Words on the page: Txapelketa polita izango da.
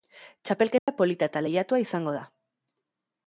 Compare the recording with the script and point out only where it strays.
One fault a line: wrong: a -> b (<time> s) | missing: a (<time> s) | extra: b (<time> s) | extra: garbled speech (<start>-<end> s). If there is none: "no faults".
extra: eta lehiatua (1.3 s)